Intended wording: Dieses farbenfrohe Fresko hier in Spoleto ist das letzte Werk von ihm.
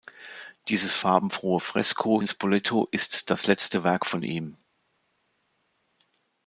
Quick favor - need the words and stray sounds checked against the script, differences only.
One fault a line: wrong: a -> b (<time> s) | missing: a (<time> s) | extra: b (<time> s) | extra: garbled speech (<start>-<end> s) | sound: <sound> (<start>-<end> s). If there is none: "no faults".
missing: hier (2.2 s)